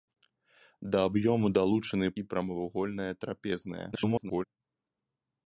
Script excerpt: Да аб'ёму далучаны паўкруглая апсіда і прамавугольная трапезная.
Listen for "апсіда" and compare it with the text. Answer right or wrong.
wrong